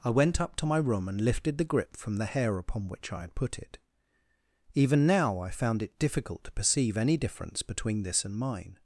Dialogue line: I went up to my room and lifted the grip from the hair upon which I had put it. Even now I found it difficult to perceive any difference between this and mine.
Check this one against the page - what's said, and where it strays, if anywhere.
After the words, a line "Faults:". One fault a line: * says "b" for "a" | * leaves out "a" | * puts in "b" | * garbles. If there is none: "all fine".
I went up to my room and lifted the grip from the hair upon which I had put it. Even now I found it difficult to perceive any difference between this and mine.
Faults:
all fine